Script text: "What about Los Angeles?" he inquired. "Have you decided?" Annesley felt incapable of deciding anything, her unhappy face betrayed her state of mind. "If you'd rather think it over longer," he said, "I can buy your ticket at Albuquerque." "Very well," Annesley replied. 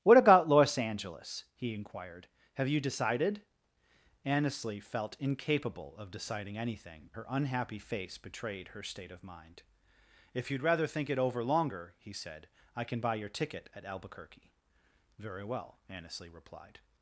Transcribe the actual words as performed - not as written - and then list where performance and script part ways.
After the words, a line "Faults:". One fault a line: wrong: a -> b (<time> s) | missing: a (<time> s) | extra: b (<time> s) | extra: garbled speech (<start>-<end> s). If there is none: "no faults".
"What about Los Angeles?" he inquired. "Have you decided?" Annesley felt incapable of deciding anything, her unhappy face betrayed her state of mind. "If you'd rather think it over longer," he said, "I can buy your ticket at Albuquerque." "Very well," Annesley replied.
Faults:
no faults